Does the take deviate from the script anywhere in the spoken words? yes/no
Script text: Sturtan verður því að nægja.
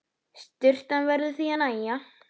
no